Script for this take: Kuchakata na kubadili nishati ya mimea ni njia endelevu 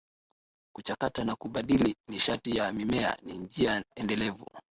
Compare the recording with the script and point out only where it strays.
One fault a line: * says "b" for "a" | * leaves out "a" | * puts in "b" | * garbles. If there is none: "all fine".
all fine